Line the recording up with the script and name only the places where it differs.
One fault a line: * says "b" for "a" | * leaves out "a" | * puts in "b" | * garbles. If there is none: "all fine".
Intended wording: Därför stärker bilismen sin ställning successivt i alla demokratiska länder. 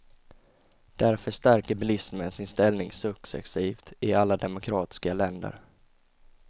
all fine